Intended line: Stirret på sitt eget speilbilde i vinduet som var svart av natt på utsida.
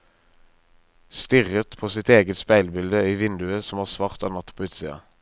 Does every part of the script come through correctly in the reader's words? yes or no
yes